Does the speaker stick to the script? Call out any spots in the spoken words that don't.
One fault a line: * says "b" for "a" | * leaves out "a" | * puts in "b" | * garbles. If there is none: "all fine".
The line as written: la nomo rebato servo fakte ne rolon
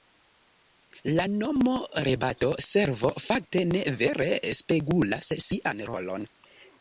* puts in "vere spegulas sian"